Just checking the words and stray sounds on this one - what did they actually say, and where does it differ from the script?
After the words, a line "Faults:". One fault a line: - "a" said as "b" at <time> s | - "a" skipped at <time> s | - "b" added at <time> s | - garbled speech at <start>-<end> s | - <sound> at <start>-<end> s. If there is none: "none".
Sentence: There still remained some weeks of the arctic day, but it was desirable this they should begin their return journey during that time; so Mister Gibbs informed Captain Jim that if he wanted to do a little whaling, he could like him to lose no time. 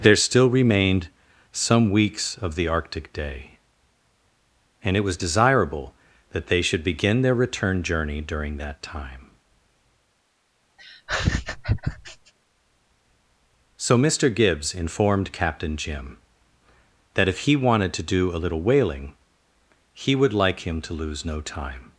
There still remained some weeks of the arctic day, and it was desirable that they should begin their return journey during that time; so Mister Gibbs informed Captain Jim that if he wanted to do a little whaling, he would like him to lose no time.
Faults:
- "but" said as "and" at 4.8 s
- "this" said as "that" at 6.3 s
- laugh at 10.8-12.3 s
- "could" said as "would" at 20.1 s